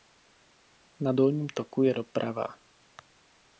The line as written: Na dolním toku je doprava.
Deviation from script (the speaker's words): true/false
false